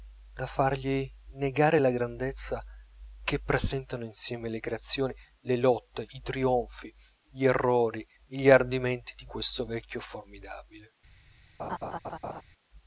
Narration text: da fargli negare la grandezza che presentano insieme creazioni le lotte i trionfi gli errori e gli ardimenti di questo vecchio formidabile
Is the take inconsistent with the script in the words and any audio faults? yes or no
yes